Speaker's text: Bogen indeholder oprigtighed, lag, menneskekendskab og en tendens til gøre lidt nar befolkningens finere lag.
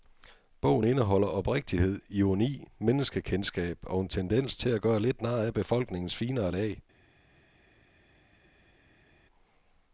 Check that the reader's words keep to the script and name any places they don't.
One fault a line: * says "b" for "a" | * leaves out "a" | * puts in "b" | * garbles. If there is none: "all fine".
* says "ironi" for "lag"
* puts in "at"
* puts in "af"